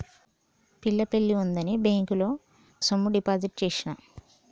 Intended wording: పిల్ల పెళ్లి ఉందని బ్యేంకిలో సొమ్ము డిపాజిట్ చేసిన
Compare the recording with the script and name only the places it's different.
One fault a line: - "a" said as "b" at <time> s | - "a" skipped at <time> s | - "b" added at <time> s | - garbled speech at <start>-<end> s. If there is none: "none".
none